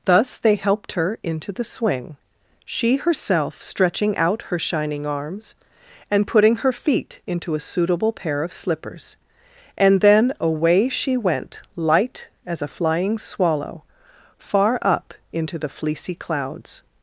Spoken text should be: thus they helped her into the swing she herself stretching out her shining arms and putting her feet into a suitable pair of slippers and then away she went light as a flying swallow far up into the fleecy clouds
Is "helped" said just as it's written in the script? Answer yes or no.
yes